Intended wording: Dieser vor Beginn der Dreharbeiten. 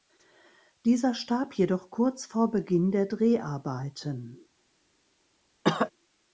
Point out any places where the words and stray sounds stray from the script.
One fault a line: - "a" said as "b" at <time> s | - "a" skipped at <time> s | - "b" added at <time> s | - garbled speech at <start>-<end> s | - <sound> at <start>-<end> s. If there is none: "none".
- "starb jedoch kurz" added at 1.1 s
- cough at 5.6-5.9 s